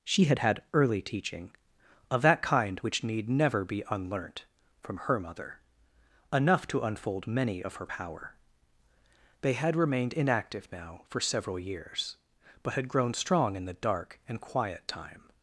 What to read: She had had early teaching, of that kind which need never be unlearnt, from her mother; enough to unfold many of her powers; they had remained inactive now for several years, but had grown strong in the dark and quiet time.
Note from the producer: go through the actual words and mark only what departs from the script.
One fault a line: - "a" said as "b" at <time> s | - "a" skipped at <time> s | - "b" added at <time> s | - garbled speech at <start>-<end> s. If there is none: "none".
- "powers" said as "power" at 7.8 s